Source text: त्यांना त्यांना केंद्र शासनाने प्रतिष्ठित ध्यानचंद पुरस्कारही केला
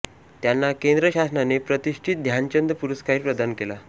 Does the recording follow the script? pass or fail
fail